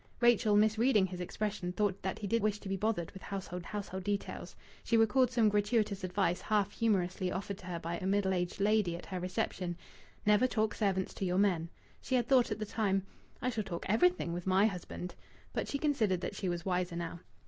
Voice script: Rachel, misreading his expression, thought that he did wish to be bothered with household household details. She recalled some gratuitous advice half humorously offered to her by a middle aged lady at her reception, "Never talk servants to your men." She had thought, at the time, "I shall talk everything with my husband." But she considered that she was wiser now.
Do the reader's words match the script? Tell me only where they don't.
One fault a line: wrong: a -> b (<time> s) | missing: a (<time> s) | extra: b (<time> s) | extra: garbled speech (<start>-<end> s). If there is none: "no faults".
no faults